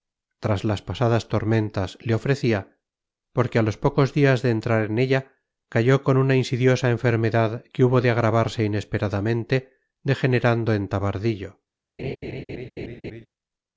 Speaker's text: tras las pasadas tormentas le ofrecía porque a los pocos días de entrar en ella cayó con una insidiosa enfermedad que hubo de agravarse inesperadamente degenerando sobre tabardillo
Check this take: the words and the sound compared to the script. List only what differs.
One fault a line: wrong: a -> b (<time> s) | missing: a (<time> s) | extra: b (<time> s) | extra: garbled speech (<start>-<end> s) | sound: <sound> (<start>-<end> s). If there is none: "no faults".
wrong: sobre -> en (10.7 s)
sound: laugh (12.0-13.3 s)